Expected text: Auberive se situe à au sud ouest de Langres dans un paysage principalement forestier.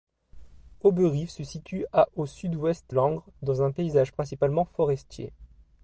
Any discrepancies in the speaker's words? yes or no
yes